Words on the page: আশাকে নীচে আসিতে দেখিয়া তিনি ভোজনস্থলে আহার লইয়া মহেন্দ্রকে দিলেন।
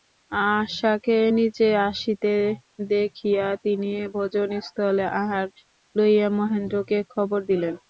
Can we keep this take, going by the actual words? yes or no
no